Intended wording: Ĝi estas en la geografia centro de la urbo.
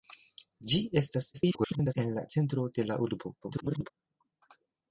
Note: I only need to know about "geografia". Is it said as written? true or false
false